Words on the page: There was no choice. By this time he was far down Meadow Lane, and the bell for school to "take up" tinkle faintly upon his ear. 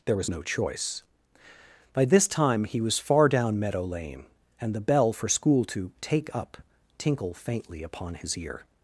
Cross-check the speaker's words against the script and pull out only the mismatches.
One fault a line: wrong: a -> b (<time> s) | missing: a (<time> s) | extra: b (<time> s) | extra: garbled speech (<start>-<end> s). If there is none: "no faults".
no faults